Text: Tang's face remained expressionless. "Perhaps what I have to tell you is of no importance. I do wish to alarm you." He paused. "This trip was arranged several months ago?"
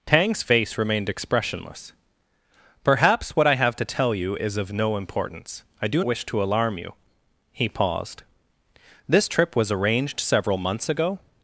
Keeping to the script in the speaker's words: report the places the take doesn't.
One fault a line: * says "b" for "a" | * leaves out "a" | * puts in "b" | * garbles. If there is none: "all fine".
all fine